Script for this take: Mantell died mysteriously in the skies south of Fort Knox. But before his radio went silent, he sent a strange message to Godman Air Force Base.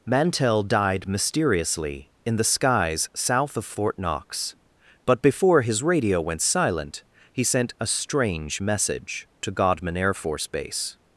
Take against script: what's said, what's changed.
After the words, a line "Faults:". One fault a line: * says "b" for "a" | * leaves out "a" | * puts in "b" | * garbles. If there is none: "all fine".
Mantell died mysteriously in the skies south of Fort Knox. But before his radio went silent, he sent a strange message to Godman Air Force Base.
Faults:
all fine